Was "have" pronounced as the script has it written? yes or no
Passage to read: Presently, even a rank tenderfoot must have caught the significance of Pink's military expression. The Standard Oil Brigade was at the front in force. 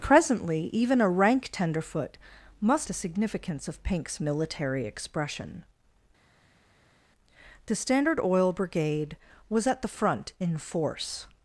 no